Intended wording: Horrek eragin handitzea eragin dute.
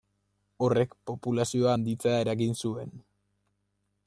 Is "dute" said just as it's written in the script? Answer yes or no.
no